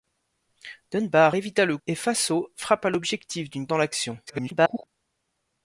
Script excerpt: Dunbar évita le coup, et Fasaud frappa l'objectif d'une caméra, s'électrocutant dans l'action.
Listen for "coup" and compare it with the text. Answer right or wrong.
wrong